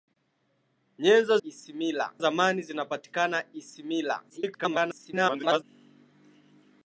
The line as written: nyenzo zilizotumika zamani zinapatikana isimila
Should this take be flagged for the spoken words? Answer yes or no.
yes